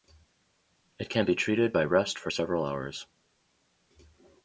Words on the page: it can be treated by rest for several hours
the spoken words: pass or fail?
pass